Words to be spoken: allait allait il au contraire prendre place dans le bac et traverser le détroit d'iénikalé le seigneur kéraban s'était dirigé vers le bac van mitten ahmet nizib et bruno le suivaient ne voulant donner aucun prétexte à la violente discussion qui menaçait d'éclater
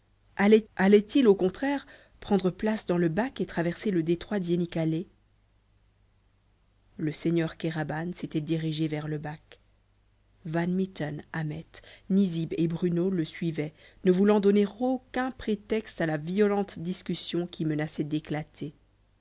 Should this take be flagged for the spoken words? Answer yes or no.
no